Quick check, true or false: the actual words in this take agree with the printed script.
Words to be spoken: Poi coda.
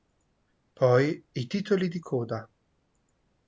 false